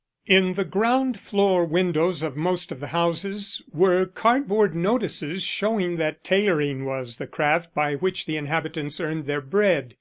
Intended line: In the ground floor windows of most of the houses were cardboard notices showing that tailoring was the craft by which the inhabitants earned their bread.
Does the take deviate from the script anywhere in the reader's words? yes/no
no